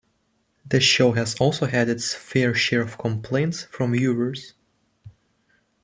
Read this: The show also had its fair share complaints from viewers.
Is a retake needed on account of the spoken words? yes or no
yes